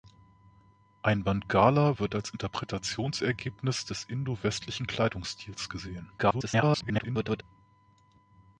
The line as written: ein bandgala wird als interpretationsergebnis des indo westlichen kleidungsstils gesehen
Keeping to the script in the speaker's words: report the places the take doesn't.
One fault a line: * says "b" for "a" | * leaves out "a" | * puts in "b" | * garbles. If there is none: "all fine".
* garbles